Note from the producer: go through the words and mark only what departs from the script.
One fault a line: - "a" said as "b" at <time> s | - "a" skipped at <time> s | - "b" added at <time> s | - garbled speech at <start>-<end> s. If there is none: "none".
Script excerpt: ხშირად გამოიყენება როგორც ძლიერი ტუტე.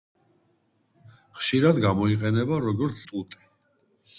- "ძლიერი" skipped at 3.0 s